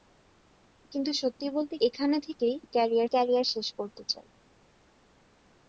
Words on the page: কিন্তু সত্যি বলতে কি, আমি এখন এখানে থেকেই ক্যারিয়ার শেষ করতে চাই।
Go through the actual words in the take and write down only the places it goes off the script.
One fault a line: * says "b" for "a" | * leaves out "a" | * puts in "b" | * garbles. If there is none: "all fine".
* leaves out "কি আমি এখন"
* puts in "ক্যারিয়ার"